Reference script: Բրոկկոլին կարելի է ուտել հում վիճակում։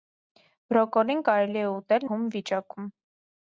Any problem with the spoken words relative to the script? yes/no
no